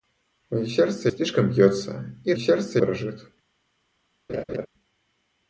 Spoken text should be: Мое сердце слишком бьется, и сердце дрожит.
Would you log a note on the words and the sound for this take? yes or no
yes